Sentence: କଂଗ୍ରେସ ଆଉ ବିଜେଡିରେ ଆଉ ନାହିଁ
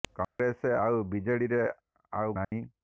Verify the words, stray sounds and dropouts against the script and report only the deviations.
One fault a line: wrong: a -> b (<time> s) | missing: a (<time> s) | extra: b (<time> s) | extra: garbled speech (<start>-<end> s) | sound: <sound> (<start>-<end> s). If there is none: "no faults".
sound: dropout (0.2-0.4 s)
sound: dropout (2.4-2.5 s)